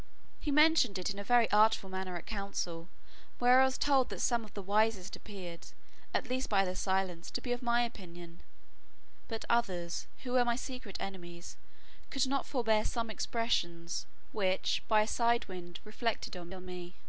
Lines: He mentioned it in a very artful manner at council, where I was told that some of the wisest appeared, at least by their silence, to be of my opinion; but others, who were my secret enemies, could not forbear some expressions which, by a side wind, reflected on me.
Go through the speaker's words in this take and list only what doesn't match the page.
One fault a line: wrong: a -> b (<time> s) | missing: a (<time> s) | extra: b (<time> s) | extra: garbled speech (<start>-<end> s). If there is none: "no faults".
extra: on (16.5 s)